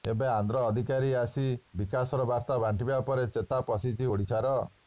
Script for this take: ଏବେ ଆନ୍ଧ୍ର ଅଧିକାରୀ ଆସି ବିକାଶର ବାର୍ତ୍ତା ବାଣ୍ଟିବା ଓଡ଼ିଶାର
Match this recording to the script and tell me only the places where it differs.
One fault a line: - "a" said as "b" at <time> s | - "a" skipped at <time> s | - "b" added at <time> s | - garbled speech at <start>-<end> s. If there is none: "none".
- "ପରେ ଚେତା ପଶିଛି" added at 3.0 s